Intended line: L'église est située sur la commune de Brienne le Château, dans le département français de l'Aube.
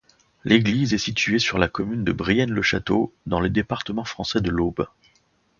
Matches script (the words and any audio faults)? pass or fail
pass